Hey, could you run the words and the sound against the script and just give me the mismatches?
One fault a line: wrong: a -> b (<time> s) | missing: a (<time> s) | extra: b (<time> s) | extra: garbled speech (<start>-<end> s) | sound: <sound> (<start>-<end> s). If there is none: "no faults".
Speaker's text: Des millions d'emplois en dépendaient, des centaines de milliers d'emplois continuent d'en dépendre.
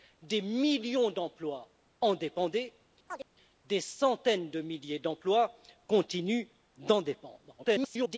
sound: chirp (3.1-3.3 s)
extra: garbled speech (7.6-8.2 s)